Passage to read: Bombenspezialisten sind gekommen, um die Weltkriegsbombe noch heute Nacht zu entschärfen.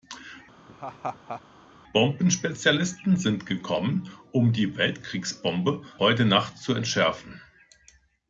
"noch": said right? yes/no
no